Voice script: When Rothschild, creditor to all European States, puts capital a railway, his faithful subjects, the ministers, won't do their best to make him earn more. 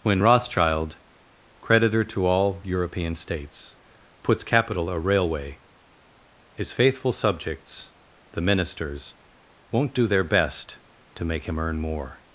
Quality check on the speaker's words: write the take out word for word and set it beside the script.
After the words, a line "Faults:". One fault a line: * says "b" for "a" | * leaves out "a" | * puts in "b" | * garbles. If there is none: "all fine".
When Rothschild, creditor to all European States, puts capital a railway, his faithful subjects, the ministers, won't do their best to make him earn more.
Faults:
all fine